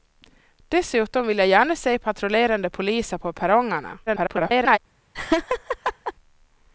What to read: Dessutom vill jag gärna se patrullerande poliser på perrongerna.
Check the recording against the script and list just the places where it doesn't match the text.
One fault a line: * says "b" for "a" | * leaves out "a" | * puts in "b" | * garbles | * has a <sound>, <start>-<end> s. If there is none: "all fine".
* garbles
* has a laugh, 5.1-6.1 s